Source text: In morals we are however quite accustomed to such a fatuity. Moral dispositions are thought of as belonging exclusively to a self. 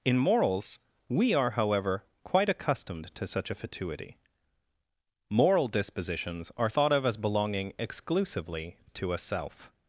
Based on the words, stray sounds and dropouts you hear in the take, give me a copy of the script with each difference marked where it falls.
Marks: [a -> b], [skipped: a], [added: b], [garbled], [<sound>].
In morals we are however quite accustomed to such a fatuity. Moral dispositions are thought of as belonging exclusively to a self.